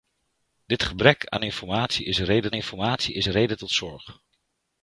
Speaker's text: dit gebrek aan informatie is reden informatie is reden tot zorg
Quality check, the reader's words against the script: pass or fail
pass